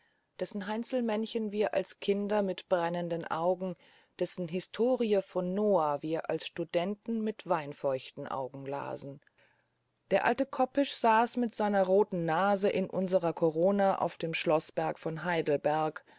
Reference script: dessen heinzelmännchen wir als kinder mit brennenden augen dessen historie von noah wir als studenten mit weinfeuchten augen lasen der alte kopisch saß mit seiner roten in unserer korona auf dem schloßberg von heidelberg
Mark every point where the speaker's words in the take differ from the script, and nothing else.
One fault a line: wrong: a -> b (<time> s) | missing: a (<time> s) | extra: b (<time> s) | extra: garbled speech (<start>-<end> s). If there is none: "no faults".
extra: nase (12.2 s)